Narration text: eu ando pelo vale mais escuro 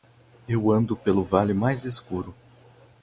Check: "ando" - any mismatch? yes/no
no